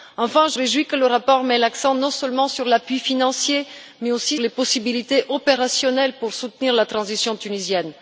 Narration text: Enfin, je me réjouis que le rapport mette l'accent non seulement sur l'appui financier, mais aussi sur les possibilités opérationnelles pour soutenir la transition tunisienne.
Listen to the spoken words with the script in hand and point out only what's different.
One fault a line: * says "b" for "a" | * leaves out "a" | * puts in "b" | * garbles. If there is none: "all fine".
* leaves out "me"
* leaves out "sur"